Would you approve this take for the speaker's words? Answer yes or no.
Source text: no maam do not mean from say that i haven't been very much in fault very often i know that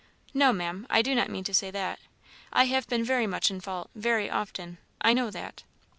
no